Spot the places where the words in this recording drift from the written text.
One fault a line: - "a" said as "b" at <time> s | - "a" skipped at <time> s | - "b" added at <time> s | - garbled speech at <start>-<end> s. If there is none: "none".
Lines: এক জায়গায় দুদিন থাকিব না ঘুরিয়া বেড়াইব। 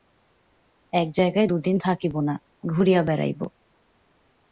none